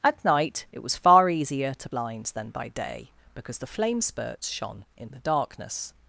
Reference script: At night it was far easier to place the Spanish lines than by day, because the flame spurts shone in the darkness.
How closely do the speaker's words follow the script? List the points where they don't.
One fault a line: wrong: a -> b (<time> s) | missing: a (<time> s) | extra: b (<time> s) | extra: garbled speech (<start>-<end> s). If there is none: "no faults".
missing: place the Spanish (1.9 s)